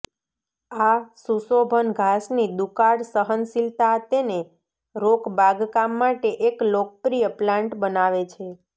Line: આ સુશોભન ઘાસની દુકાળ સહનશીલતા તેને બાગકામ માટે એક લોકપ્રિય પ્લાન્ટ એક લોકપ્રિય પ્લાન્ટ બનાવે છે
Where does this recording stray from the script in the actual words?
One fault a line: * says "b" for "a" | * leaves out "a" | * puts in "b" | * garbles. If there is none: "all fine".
* puts in "રોક"
* leaves out "એક લોકપ્રિય પ્લાન્ટ"